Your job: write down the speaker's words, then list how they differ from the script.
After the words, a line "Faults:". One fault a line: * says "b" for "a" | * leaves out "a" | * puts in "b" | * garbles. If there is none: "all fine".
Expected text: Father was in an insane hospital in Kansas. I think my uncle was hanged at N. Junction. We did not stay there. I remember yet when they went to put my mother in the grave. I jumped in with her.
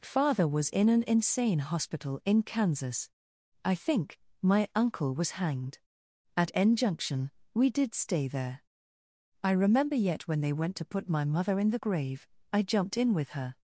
Father was in an insane hospital in Kansas. I think my uncle was hanged at N. Junction. We did stay there. I remember yet when they went to put my mother in the grave. I jumped in with her.
Faults:
* leaves out "not"